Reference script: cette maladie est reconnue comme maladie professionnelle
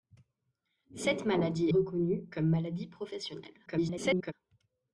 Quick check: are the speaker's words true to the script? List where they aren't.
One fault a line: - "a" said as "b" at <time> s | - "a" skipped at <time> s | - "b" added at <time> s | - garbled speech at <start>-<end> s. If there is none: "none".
- "est" skipped at 1.7 s
- garbled speech at 3.7-4.3 s